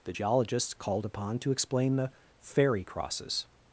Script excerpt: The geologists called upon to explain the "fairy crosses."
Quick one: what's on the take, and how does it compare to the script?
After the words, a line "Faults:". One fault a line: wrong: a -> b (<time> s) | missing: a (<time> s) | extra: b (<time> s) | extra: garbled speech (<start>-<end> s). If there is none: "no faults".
The geologists called upon to explain the "fairy crosses."
Faults:
no faults